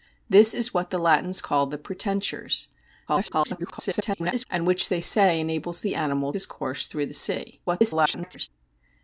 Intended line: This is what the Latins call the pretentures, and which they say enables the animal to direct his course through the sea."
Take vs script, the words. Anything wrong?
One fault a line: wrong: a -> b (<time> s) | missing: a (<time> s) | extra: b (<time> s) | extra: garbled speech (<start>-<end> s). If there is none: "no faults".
extra: garbled speech (3.1-4.5 s)
missing: to direct (6.3 s)
extra: garbled speech (7.7-8.5 s)